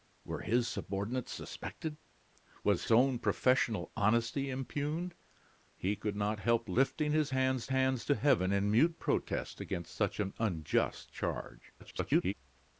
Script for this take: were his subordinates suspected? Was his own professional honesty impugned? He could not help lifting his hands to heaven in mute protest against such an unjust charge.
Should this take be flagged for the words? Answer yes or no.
yes